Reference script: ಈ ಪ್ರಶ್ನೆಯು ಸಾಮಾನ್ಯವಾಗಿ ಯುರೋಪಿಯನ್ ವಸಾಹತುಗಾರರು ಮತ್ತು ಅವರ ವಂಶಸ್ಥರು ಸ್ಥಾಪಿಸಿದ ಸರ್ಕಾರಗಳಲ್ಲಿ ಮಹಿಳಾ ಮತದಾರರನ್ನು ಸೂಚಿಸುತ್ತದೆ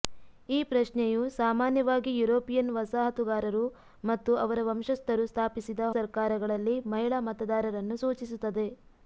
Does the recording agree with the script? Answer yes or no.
yes